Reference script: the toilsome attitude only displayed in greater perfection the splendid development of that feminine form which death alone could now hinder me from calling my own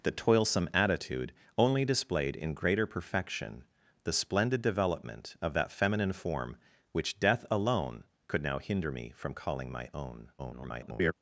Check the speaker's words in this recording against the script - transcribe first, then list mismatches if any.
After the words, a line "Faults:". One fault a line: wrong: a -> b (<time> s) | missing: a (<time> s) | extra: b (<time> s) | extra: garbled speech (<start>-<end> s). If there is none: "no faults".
the toilsome attitude only displayed in greater perfection the splendid development of that feminine form which death alone could now hinder me from calling my own [garbled]
Faults:
extra: garbled speech (10.4-11.1 s)